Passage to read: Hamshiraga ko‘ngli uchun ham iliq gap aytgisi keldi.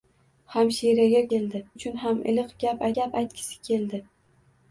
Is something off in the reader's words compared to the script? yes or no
yes